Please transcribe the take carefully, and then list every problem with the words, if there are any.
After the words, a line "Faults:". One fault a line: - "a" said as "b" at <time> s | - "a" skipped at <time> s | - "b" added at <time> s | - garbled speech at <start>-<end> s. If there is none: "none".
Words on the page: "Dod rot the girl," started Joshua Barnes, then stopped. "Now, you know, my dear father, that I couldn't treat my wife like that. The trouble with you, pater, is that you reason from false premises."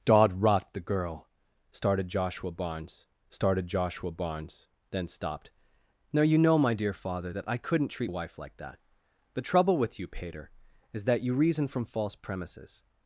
"Dod rot the girl," started Joshua Barnes started Joshua Barnes, then stopped. "Now, you know, my dear father, that I couldn't treat wife like that. The trouble with you, pater, is that you reason from false premises."
Faults:
- "started Joshua Barnes" added at 3.3 s
- "my" skipped at 8.1 s